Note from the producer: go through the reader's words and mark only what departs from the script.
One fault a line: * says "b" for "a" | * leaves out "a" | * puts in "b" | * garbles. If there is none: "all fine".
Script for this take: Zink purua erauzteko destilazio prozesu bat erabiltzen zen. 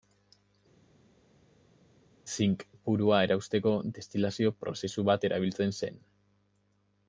all fine